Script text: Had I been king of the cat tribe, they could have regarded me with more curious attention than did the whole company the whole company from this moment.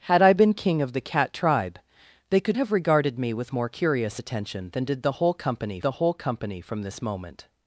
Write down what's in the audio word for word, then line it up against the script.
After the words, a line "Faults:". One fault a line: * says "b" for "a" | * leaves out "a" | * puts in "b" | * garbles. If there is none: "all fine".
Had I been king of the cat tribe, they could have regarded me with more curious attention than did the whole company the whole company from this moment.
Faults:
all fine